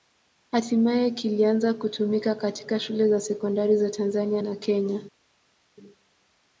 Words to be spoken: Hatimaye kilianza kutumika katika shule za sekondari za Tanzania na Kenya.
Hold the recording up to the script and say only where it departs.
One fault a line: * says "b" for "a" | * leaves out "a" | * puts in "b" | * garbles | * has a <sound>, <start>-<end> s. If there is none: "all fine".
all fine